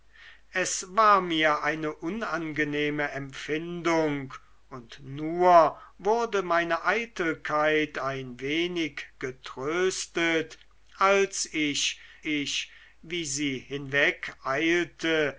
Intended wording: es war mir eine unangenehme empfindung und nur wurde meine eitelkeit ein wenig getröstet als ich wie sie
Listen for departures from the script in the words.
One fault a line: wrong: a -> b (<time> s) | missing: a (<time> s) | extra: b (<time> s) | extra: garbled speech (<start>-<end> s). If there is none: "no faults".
extra: ich (12.2 s)